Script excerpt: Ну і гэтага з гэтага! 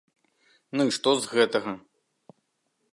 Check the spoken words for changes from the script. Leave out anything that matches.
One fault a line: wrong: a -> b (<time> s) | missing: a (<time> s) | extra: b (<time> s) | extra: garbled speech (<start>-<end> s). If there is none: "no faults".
wrong: гэтага -> што (1.0 s)